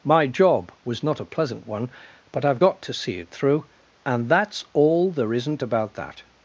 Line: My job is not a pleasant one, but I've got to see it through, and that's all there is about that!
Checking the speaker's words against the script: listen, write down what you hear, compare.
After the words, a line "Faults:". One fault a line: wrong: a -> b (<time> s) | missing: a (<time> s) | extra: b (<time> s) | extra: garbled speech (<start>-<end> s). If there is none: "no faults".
My job was not a pleasant one, but I've got to see it through, and that's all there isn't about that!
Faults:
wrong: is -> was (0.8 s)
wrong: is -> isn't (5.3 s)